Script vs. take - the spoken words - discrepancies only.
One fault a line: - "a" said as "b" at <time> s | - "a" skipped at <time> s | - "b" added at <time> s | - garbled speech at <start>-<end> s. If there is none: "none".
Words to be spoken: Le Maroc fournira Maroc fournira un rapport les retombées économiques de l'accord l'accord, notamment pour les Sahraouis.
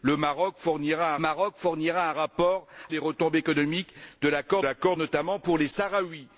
none